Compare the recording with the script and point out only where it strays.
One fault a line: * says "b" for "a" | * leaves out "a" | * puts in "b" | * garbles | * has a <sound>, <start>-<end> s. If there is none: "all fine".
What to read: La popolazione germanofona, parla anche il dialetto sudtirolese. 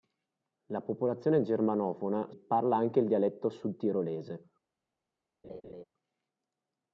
* has a laugh, 5.4-5.8 s